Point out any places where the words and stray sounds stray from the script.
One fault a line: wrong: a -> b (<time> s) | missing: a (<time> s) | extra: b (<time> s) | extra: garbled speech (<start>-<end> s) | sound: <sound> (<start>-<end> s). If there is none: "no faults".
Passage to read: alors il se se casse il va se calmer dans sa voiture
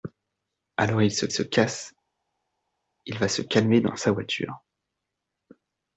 no faults